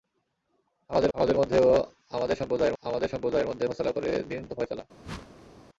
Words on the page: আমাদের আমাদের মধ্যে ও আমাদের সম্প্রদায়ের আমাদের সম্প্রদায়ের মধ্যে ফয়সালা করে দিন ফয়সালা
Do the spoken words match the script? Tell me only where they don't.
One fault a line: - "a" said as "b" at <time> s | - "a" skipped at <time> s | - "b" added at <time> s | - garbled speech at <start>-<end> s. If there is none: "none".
none